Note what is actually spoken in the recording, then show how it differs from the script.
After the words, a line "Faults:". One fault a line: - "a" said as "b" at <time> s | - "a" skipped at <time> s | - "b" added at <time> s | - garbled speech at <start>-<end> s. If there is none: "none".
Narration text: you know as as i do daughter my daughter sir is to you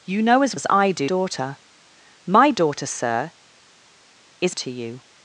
you know as as i do daughter my daughter sir is to you
Faults:
none